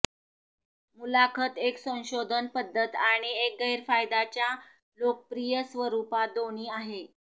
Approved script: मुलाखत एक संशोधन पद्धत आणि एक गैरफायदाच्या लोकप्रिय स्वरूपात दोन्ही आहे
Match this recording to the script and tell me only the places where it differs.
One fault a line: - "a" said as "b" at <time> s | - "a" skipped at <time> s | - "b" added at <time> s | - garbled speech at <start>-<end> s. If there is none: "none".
none